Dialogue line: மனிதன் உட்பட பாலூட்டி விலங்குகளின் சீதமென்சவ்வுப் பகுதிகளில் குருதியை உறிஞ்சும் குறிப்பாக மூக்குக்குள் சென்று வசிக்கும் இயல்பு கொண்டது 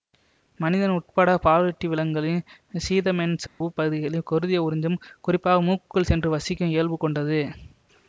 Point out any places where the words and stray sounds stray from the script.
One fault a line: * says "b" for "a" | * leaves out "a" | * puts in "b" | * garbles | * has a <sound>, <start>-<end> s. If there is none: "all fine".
* has a dropout, 3.5-3.6 s